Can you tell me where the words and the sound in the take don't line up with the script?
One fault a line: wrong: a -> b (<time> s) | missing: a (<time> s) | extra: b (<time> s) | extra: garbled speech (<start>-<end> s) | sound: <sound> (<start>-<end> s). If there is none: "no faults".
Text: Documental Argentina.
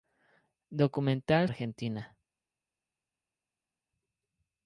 no faults